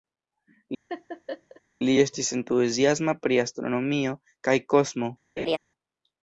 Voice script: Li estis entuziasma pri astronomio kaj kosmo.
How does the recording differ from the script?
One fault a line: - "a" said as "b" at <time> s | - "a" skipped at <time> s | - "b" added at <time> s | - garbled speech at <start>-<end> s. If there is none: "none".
none